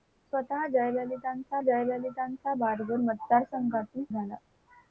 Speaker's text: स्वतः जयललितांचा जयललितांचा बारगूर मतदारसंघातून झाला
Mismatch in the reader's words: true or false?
false